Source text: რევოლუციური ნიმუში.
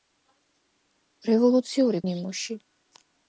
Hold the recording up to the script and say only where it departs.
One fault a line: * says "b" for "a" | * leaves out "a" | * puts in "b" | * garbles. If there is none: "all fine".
all fine